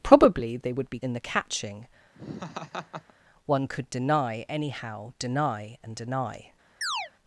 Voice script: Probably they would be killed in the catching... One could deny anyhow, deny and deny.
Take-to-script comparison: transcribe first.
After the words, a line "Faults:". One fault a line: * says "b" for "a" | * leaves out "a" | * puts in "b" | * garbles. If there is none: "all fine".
Probably they would be in the catching... One could deny anyhow, deny and deny.
Faults:
* leaves out "killed"